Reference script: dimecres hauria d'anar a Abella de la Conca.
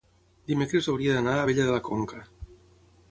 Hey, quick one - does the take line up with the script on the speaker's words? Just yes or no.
yes